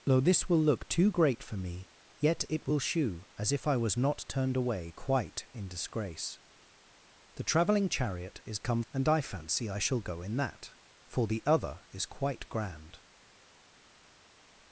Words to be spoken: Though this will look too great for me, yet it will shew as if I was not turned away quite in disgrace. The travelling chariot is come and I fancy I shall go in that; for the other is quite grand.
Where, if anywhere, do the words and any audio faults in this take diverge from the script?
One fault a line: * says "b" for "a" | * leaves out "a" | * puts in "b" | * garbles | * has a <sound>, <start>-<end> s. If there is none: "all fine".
all fine